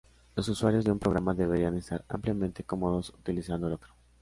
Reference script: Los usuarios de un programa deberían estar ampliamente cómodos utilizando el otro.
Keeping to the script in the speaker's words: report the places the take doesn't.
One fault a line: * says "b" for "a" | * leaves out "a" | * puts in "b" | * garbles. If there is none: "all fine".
all fine